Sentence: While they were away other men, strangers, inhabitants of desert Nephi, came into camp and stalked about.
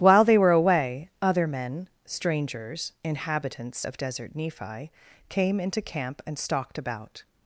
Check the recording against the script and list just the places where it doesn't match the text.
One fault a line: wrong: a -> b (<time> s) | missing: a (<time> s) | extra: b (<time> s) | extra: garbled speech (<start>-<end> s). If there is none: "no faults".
no faults